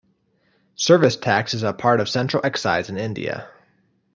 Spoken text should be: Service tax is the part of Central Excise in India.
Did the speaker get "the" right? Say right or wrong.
wrong